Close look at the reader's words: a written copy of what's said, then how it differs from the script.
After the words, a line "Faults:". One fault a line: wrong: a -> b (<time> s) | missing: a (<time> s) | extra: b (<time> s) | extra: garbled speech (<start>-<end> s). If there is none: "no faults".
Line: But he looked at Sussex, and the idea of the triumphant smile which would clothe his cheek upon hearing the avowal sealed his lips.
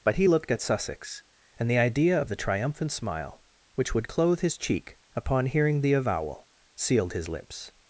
But he looked at Sussex, and the idea of the triumphant smile which would clothe his cheek upon hearing the avowal sealed his lips.
Faults:
no faults